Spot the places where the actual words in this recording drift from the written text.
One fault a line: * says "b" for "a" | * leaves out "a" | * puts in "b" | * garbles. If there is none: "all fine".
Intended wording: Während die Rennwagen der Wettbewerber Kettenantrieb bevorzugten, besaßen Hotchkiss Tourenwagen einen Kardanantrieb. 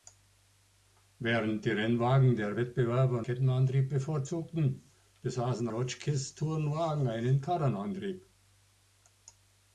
all fine